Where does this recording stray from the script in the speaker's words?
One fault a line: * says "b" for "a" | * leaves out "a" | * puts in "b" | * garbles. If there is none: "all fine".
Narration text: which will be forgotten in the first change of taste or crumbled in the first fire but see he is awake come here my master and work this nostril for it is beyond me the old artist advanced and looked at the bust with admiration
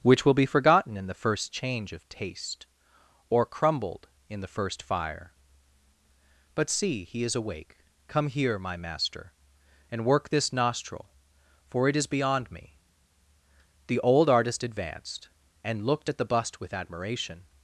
all fine